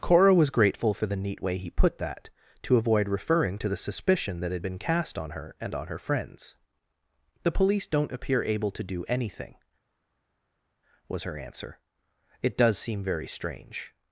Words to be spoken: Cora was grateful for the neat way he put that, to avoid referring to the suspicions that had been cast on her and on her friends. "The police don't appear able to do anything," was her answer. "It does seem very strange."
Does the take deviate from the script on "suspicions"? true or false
true